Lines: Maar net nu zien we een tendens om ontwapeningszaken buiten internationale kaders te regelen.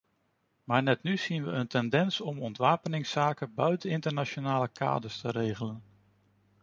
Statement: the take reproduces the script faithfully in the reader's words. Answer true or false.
true